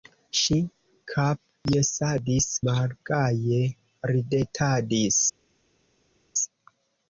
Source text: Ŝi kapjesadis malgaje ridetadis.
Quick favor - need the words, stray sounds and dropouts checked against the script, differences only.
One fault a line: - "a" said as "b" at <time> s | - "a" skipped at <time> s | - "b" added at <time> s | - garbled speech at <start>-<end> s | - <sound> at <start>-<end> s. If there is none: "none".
none